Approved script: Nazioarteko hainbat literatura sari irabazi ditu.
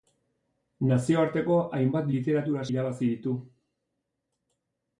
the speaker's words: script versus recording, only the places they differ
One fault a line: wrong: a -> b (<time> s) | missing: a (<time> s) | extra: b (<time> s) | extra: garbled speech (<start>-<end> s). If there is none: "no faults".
missing: sari (2.6 s)